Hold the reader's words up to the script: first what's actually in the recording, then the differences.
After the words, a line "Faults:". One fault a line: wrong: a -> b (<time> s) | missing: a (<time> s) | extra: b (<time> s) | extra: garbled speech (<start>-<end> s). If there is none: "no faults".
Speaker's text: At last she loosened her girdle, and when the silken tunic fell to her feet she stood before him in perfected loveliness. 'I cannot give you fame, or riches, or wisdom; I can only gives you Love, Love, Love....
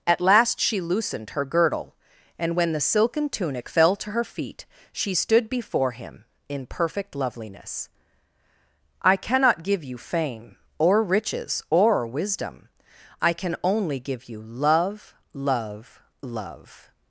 At last she loosened her girdle, and when the silken tunic fell to her feet she stood before him in perfect loveliness. 'I cannot give you fame, or riches, or wisdom; I can only give you Love, Love, Love....
Faults:
wrong: perfected -> perfect (6.7 s)
wrong: gives -> give (14.0 s)